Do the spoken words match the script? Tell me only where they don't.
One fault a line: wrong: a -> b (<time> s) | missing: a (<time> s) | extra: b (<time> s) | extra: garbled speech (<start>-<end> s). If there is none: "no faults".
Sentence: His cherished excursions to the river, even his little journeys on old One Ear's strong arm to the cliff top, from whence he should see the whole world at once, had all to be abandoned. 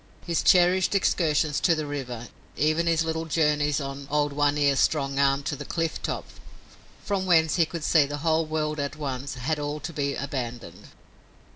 wrong: should -> could (7.7 s)